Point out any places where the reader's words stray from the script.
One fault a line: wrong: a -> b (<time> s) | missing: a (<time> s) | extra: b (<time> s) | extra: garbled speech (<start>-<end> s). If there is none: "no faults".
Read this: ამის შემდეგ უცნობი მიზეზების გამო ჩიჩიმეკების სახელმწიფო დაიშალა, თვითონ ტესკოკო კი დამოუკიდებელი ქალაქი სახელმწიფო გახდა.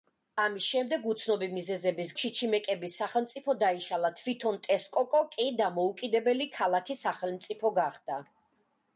missing: გამო (2.1 s)